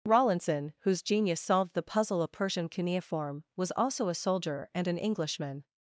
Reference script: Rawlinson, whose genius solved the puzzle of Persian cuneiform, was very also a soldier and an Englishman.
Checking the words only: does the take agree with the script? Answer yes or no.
no